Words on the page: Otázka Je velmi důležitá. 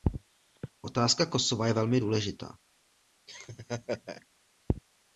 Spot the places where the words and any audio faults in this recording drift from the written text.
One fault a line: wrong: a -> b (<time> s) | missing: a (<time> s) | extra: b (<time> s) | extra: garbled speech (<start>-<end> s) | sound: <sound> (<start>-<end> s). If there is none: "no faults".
extra: Kosova (1.2 s)
sound: laugh (3.3-4.3 s)